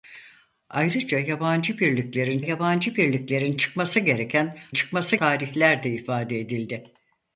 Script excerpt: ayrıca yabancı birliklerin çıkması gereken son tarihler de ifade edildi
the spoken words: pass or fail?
fail